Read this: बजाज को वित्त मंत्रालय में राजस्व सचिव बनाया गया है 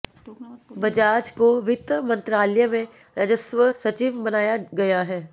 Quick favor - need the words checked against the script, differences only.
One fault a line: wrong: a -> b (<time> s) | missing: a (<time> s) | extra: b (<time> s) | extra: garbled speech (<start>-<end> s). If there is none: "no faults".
no faults